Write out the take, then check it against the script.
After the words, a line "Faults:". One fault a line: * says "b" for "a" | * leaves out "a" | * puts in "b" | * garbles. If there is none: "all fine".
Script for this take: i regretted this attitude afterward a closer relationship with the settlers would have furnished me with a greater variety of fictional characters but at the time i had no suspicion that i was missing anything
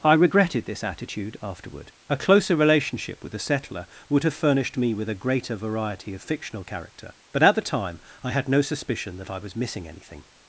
i regretted this attitude afterward a closer relationship with the settler would have furnished me with a greater variety of fictional character but at the time i had no suspicion that i was missing anything
Faults:
* says "settler" for "settlers"
* says "character" for "characters"